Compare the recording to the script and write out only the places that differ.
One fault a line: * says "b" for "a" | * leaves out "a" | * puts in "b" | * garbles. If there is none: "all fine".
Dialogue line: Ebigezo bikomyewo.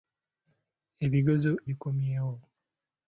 all fine